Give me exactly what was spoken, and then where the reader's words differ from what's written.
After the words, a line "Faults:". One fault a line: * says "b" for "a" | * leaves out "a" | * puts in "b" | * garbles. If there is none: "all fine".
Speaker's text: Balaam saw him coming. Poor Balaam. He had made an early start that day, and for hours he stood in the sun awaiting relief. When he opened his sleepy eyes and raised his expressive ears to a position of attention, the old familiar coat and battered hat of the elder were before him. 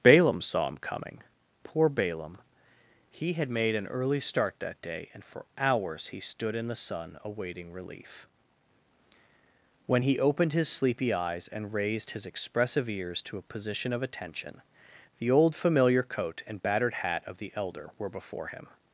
Balaam saw him coming. Poor Balaam. He had made an early start that day, and for hours he stood in the sun awaiting relief. When he opened his sleepy eyes and raised his expressive ears to a position of attention, the old familiar coat and battered hat of the elder were before him.
Faults:
all fine